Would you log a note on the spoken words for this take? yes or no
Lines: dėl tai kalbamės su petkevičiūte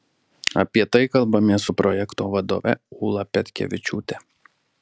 yes